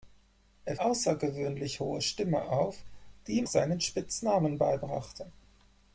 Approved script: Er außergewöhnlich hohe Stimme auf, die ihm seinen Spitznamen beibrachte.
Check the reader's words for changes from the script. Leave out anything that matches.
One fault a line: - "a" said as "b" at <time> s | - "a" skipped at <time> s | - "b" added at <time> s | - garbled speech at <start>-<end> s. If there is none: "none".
none